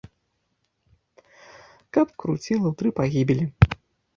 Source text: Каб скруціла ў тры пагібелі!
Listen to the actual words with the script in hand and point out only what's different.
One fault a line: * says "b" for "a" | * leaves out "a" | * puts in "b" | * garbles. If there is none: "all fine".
all fine